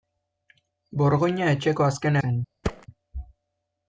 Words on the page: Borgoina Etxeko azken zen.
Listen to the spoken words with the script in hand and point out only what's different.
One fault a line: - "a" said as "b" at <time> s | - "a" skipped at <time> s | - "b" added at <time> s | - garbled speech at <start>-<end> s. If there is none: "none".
none